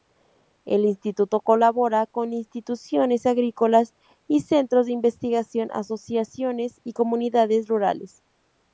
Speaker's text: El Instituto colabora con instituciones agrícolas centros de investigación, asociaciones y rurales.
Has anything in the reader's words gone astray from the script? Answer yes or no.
yes